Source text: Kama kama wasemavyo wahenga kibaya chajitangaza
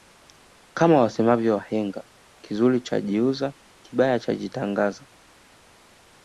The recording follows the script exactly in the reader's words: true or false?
false